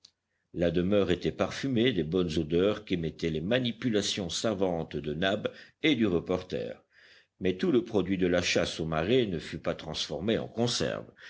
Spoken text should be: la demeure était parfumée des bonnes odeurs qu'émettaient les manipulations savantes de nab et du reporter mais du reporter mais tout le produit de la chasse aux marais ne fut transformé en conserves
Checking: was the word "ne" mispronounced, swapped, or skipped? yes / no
no